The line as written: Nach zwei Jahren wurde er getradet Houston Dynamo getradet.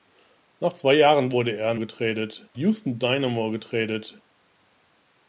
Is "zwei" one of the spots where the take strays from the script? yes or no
no